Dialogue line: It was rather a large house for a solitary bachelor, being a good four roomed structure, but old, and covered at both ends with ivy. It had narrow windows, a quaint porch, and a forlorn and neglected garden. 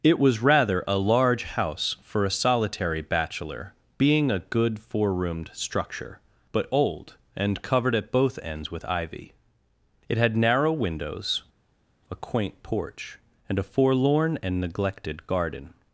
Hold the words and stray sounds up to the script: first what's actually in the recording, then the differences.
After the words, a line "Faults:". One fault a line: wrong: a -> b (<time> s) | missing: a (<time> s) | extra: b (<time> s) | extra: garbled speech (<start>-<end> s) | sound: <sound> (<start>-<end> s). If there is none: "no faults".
It was rather a large house for a solitary bachelor, being a good four roomed structure, but old, and covered at both ends with ivy. It had narrow windows, a quaint porch, and a forlorn and neglected garden.
Faults:
no faults